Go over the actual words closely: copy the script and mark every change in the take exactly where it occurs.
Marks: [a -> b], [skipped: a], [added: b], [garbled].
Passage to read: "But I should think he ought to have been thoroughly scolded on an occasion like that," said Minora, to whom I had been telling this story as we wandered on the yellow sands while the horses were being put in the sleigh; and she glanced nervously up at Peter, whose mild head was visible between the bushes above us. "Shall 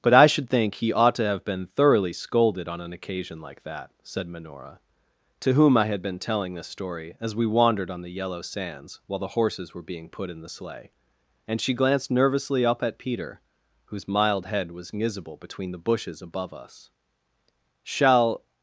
"But I should think he ought to have been thoroughly scolded on an occasion like that," said Minora, to whom I had been telling this story as we wandered on the yellow sands while the horses were being put in the sleigh; and she glanced nervously up at Peter, whose mild head was visible between the bushes above us. "Shall